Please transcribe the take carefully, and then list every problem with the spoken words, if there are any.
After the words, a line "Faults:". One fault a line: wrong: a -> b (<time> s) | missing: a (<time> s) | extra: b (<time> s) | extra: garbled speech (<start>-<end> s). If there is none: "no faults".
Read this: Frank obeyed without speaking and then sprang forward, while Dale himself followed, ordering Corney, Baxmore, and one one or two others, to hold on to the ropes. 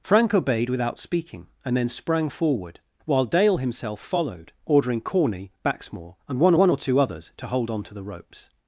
Frank obeyed without speaking and then sprang forward, while Dale himself followed, ordering Corney, Baxmore, and one one or two others, to hold on to the ropes.
Faults:
no faults